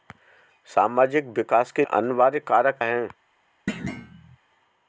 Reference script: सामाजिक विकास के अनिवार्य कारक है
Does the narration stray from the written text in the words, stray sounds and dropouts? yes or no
yes